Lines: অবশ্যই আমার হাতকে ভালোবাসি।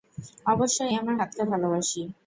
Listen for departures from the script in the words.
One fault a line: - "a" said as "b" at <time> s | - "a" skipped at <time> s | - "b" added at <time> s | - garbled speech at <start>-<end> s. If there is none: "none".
none